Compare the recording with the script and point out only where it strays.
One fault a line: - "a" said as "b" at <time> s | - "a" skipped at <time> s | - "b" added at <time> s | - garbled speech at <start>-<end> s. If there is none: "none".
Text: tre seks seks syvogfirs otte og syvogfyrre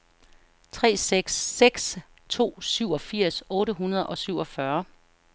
- "to" added at 2.3 s
- "hundrede" added at 3.7 s